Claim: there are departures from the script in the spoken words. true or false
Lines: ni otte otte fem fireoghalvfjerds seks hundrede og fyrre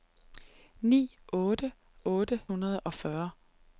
true